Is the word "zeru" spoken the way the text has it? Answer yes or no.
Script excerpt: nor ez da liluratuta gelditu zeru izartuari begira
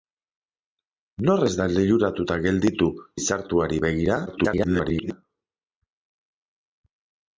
no